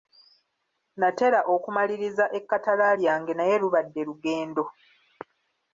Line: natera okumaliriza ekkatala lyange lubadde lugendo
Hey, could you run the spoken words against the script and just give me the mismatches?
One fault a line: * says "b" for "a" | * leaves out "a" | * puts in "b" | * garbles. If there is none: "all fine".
* puts in "naye"